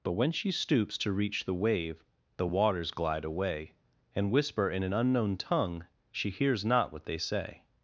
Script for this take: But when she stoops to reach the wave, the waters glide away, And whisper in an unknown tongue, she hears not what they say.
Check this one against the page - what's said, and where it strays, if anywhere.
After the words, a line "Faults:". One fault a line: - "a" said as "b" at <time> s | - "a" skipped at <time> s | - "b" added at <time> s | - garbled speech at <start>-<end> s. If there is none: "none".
But when she stoops to reach the wave, the waters glide away, And whisper in an unknown tongue, she hears not what they say.
Faults:
none